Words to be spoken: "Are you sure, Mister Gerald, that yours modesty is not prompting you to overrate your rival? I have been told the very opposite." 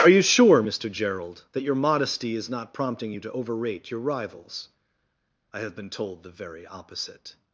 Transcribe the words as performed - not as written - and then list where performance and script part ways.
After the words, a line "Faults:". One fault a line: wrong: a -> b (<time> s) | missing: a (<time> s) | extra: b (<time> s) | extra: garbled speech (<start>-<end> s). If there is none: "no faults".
"Are you sure, Mister Gerald, that your modesty is not prompting you to overrate your rivals? I have been told the very opposite."
Faults:
wrong: yours -> your (1.6 s)
wrong: rival -> rivals (4.0 s)